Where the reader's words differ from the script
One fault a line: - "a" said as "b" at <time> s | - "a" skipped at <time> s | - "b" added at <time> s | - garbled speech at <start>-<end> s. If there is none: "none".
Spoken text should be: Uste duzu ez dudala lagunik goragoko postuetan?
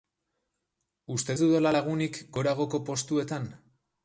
- "duzu" skipped at 1.4 s